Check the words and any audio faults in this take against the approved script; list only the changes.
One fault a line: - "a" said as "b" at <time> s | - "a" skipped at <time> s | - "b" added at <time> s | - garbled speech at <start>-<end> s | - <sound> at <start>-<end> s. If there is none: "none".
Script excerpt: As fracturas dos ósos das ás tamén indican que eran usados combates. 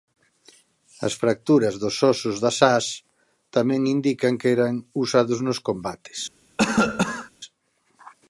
- "nos" added at 5.5 s
- cough at 6.6-7.3 s